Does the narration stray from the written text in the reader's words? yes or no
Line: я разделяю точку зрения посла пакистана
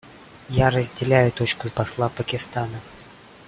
yes